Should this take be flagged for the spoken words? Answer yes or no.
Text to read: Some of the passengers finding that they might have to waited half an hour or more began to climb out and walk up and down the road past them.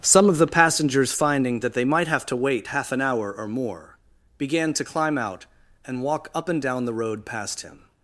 yes